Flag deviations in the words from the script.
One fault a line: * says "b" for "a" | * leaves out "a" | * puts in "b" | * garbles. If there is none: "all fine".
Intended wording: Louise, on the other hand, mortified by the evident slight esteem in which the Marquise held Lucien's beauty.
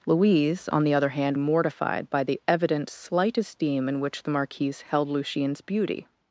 all fine